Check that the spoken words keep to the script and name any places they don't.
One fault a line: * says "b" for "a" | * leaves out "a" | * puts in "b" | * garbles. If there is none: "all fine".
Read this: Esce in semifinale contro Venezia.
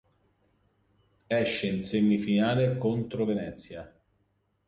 all fine